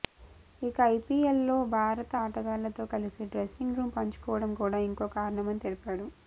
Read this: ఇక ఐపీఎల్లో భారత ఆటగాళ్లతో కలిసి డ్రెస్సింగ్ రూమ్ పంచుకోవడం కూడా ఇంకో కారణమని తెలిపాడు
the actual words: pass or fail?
pass